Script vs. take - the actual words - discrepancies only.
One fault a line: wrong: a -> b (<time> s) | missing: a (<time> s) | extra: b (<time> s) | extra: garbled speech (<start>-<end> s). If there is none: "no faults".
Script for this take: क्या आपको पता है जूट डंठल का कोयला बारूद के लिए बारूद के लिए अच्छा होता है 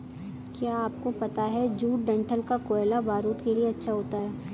missing: बारूद के लिए (3.7 s)